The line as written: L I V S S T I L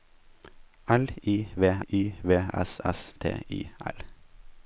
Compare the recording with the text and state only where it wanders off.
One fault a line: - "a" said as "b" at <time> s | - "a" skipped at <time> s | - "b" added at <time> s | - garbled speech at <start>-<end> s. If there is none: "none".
- "I V" added at 1.9 s